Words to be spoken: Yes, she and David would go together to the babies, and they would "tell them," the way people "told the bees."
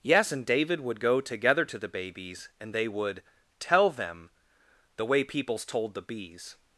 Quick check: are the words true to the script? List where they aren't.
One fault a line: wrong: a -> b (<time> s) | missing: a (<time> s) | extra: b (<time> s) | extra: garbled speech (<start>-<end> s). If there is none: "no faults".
missing: she (0.3 s)
wrong: people -> peoples (5.2 s)